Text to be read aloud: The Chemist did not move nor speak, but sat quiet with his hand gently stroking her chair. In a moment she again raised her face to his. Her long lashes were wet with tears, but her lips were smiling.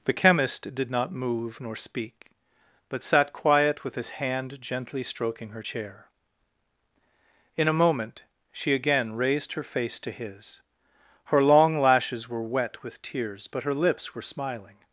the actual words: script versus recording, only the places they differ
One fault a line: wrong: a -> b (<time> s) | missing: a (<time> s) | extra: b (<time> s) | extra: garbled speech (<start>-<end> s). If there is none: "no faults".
no faults